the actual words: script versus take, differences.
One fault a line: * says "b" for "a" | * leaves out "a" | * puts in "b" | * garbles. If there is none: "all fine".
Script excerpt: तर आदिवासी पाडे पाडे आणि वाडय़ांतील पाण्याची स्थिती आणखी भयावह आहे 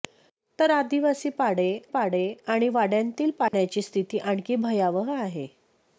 all fine